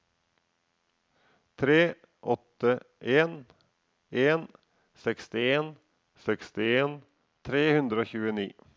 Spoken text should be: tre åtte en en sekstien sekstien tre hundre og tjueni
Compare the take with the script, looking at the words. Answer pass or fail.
pass